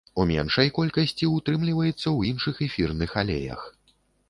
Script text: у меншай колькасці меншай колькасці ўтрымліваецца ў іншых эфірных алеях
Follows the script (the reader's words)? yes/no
no